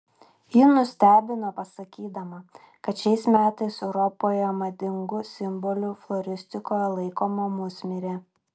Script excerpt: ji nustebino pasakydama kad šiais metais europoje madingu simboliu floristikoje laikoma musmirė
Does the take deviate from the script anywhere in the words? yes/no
no